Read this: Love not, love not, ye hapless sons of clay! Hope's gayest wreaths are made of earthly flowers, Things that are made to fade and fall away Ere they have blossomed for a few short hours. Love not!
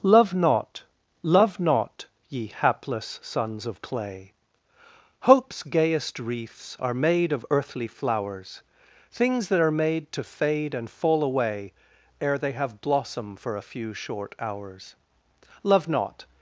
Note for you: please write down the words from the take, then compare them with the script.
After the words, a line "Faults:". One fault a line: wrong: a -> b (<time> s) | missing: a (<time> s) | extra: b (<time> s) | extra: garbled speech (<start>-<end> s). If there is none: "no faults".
Love not, love not, ye hapless sons of clay! Hope's gayest wreaths are made of earthly flowers, Things that are made to fade and fall away Ere they have blossom for a few short hours. Love not!
Faults:
wrong: blossomed -> blossom (12.8 s)